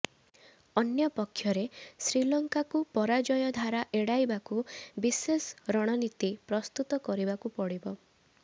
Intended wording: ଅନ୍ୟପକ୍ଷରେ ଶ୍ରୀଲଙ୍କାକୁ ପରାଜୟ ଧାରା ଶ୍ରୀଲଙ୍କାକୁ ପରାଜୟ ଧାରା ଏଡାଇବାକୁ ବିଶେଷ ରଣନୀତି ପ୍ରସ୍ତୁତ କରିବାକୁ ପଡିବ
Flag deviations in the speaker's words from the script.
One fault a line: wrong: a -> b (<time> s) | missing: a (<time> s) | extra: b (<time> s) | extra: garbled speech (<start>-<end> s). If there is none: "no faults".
missing: ଶ୍ରୀଲଙ୍କାକୁ ପରାଜୟ ଧାରା (3.8 s)